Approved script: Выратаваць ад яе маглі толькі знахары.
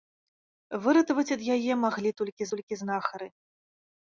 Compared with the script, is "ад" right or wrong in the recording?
right